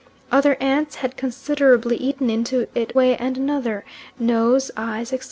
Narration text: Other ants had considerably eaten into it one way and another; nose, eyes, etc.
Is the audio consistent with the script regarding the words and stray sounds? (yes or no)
no